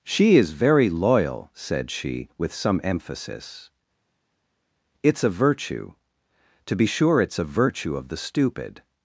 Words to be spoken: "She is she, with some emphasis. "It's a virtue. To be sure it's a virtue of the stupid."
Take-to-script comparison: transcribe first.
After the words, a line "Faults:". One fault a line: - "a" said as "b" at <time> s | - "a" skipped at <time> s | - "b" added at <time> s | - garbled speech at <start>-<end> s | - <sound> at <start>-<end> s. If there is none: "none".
"She is very loyal," said she, with some emphasis. "It's a virtue. To be sure it's a virtue of the stupid."
Faults:
- "very loyal said" added at 0.5 s